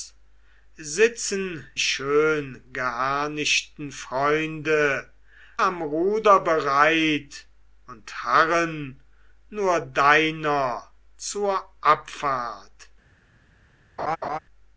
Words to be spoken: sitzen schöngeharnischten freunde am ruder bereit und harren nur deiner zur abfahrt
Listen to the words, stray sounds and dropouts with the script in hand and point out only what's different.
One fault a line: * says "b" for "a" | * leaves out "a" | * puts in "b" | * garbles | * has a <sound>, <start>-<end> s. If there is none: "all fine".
* has a laugh, 14.0-14.4 s